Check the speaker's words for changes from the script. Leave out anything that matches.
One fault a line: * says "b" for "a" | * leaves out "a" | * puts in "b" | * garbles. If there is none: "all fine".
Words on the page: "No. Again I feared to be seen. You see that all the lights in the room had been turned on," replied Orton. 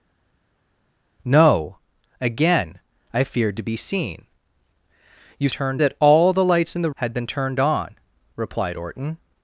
* says "turned" for "see"
* leaves out "room"